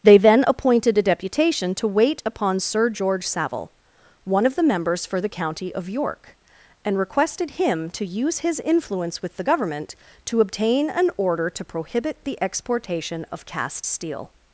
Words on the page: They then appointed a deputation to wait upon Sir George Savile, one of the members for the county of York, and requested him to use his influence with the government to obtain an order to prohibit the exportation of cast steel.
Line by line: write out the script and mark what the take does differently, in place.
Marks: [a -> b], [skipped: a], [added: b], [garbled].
They then appointed a deputation to wait upon Sir George Savile, one of the members for the county of York, and requested him to use his influence with the government to obtain an order to prohibit the exportation of cast steel.